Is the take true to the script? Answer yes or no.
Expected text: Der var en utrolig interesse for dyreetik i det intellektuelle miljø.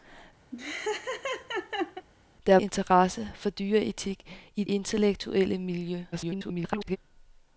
no